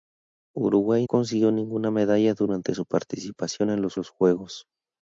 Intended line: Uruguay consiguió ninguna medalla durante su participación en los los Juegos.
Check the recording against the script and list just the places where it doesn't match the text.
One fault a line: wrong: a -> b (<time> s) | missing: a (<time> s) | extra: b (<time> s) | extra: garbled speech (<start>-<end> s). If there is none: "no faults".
no faults